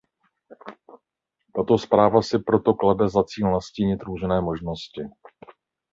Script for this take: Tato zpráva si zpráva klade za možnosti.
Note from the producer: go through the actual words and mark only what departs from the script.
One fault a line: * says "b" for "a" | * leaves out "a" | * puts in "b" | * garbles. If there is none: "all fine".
* says "proto" for "zpráva"
* puts in "cíl nastínit různé"